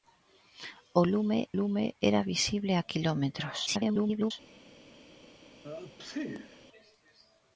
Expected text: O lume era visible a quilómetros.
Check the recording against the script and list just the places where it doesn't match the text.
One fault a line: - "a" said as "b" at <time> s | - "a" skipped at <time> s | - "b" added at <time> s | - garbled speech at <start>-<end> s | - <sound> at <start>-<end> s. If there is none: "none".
- "lume" added at 1.6 s
- garbled speech at 3.7-4.3 s
- sneeze at 5.6-6.7 s